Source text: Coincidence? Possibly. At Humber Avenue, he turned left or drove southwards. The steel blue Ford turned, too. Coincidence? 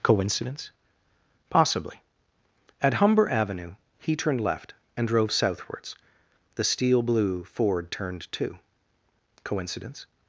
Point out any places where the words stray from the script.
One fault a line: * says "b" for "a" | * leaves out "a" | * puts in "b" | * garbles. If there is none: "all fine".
* says "and" for "or"